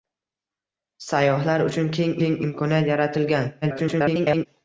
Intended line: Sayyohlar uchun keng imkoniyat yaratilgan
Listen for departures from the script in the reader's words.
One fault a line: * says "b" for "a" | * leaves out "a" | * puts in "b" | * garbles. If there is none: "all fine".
* puts in "keng"
* garbles